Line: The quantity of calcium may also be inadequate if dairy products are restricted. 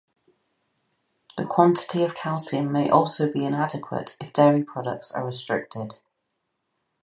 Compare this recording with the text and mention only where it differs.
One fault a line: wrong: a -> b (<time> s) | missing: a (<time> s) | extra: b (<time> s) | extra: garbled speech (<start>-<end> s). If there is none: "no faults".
no faults